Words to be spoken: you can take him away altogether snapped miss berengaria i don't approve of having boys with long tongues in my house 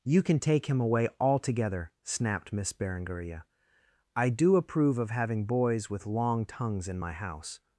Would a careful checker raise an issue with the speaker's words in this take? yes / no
yes